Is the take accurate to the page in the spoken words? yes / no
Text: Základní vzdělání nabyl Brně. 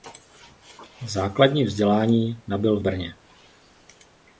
yes